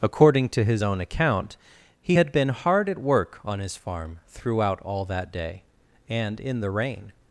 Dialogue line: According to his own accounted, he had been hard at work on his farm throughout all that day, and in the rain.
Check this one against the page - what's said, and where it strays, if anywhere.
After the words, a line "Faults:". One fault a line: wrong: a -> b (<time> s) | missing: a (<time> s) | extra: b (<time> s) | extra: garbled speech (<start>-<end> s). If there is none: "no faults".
According to his own account, he had been hard at work on his farm throughout all that day, and in the rain.
Faults:
wrong: accounted -> account (1.0 s)